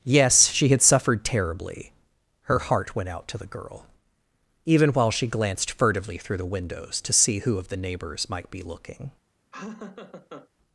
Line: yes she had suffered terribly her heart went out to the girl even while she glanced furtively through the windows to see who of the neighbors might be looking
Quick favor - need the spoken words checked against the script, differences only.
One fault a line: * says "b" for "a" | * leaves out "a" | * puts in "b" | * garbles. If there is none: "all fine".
all fine